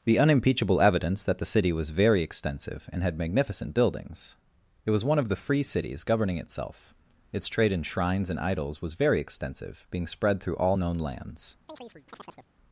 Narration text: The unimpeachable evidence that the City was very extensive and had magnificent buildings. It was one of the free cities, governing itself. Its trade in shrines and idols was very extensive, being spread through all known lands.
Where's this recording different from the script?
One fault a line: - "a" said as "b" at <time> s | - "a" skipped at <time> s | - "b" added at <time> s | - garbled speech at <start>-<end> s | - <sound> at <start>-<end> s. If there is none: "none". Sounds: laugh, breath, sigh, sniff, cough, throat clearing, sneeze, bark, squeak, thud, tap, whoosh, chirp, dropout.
- chirp at 11.7-12.5 s